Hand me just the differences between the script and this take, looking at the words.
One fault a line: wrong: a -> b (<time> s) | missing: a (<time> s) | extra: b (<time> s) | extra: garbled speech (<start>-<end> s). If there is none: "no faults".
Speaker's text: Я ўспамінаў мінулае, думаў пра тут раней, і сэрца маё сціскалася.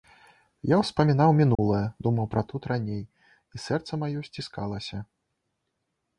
no faults